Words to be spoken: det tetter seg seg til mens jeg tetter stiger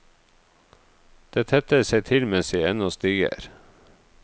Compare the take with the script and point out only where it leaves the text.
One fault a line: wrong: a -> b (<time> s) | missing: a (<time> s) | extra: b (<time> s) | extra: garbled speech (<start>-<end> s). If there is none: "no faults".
missing: seg (2.0 s)
wrong: tetter -> ennå (2.7 s)